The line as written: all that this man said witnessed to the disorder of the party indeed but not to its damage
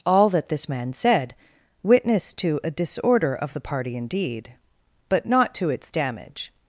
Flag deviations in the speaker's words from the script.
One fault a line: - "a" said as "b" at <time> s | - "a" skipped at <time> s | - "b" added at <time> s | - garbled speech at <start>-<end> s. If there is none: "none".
- "the" said as "a" at 2.6 s